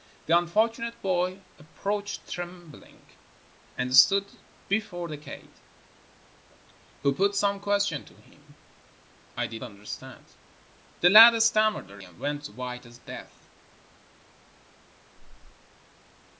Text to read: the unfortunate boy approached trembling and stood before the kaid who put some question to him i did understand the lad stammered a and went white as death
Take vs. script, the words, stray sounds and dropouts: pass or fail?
pass